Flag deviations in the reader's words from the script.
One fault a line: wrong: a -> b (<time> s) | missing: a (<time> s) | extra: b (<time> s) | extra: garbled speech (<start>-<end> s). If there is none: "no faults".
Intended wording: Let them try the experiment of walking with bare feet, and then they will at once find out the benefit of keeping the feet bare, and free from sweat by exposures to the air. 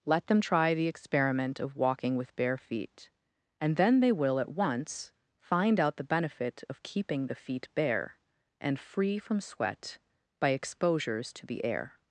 no faults